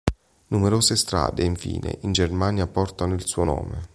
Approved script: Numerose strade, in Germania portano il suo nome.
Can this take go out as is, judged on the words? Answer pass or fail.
fail